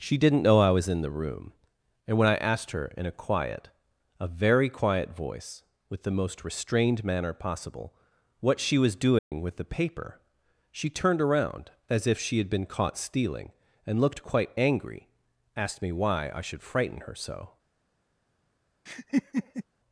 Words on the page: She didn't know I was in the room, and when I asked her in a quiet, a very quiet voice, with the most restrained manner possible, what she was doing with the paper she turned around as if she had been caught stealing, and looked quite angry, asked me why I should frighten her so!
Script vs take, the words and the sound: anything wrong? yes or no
yes